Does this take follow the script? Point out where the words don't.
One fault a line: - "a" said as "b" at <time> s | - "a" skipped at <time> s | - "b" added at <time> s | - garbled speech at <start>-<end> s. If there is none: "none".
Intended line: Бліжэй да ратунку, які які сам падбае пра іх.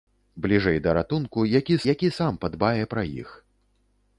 none